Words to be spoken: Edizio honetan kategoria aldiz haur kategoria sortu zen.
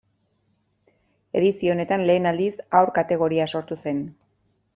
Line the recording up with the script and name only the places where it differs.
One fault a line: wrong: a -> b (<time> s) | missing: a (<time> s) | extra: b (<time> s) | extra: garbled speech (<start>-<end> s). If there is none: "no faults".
wrong: kategoria -> lehen (2.1 s)